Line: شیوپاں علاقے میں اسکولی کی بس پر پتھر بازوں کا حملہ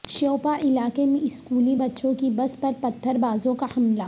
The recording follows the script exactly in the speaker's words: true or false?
false